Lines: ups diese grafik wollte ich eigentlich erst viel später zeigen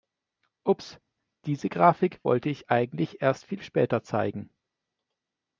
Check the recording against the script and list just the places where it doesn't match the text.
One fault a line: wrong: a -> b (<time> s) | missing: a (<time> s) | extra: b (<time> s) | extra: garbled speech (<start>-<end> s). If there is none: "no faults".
no faults